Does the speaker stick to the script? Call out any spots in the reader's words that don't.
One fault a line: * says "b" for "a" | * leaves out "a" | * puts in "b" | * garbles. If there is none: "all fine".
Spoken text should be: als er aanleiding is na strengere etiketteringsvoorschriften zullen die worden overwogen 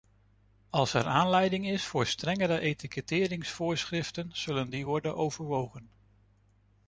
* says "voor" for "na"